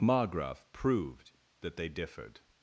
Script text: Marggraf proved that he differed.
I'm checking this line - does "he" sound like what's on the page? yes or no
no